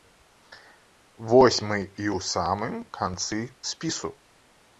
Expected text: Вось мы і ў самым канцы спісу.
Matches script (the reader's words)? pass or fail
pass